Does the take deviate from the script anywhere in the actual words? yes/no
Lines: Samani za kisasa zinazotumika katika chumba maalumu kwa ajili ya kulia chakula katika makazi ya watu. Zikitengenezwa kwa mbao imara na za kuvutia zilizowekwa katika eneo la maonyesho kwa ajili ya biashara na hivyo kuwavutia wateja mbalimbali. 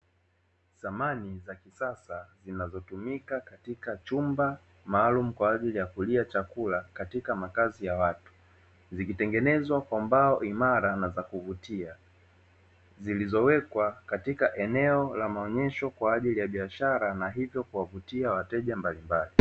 no